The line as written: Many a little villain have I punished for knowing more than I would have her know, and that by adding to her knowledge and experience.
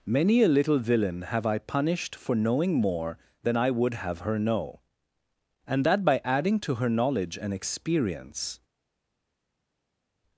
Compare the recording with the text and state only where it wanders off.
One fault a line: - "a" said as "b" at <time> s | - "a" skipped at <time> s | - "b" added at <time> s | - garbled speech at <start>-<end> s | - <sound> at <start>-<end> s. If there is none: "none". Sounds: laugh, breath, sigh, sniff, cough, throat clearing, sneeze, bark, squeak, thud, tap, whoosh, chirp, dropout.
none